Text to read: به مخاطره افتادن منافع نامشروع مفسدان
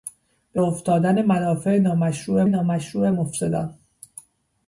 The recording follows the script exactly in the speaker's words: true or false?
false